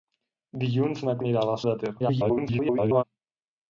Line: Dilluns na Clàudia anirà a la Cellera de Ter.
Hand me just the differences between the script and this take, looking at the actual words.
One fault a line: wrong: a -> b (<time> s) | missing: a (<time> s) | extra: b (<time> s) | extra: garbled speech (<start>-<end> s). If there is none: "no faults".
missing: Clàudia (1.1 s)
missing: Cellera (1.6 s)
extra: garbled speech (2.0-3.0 s)